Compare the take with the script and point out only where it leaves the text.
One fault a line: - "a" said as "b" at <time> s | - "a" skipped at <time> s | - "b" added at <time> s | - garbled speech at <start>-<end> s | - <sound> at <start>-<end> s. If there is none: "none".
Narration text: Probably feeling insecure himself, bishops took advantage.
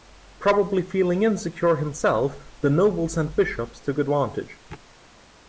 - "the nobles and" added at 2.6 s